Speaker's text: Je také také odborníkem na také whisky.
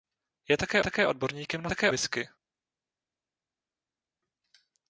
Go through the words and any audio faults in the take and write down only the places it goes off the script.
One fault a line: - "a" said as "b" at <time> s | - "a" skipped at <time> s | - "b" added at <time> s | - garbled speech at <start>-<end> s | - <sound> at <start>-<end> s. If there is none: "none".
none